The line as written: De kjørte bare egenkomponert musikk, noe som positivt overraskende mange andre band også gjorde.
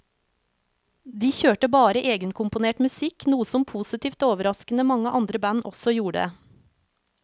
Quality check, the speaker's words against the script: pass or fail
pass